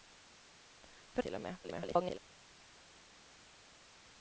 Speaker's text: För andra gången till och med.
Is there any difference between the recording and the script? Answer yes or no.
yes